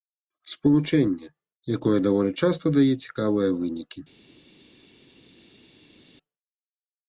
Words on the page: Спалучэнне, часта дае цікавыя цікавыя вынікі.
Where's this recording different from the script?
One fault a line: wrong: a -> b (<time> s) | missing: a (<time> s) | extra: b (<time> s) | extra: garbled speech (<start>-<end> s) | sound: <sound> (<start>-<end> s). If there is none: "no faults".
extra: якое даволі (1.8 s)
missing: цікавыя (3.5 s)